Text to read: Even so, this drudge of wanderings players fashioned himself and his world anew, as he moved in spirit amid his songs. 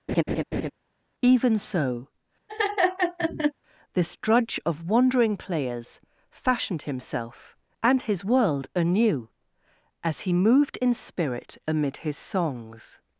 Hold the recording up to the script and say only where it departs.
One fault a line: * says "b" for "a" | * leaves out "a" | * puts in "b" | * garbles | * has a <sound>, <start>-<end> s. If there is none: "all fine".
* has a laugh, 0.1-0.7 s
* has a laugh, 2.5-3.5 s
* says "wandering" for "wanderings"